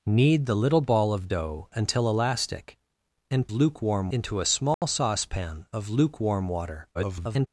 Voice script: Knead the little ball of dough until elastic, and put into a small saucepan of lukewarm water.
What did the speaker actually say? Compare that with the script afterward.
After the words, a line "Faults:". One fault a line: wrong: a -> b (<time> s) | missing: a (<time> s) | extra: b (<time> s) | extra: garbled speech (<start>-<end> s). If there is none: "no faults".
Knead the little ball of dough until elastic, and lukewarm into a small saucepan of lukewarm water. [garbled]
Faults:
wrong: put -> lukewarm (3.5 s)
extra: garbled speech (6.9-7.5 s)